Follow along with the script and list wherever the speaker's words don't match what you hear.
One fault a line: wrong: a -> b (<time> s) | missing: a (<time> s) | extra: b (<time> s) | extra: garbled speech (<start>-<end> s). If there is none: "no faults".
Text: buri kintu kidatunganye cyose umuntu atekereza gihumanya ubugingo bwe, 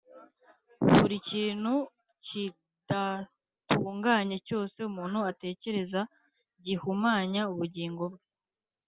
no faults